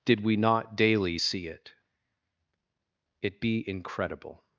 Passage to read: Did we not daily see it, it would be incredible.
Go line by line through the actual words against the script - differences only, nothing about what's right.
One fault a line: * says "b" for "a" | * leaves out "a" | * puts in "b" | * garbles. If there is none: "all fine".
* leaves out "would"